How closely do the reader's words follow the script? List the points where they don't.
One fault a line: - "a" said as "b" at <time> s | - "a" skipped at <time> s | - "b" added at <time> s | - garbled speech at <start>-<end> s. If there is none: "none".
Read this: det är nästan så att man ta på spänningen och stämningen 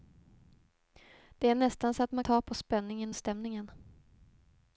none